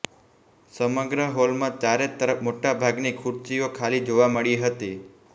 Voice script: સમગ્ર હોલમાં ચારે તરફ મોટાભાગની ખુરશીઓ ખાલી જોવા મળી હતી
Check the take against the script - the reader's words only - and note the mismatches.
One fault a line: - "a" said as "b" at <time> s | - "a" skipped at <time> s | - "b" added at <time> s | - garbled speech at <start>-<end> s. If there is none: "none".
none